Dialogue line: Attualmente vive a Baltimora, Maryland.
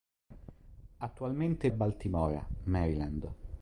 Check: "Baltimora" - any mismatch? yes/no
no